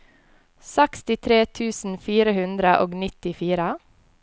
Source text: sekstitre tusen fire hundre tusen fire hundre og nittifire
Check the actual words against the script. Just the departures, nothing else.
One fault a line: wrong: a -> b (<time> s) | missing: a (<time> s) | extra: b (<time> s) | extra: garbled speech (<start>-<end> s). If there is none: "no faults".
missing: tusen fire hundre (2.7 s)